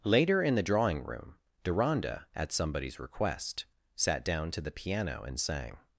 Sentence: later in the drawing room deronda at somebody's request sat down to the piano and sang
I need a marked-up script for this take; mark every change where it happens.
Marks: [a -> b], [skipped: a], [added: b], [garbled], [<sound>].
later in the drawing room deronda at somebody's request sat down to the piano and sang